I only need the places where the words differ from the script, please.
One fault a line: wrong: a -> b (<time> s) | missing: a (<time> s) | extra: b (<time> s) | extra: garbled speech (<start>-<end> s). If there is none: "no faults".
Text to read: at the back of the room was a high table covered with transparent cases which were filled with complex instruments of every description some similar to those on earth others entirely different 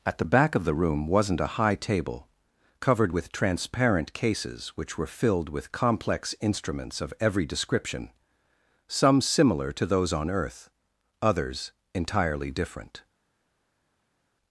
wrong: was -> wasn't (1.1 s)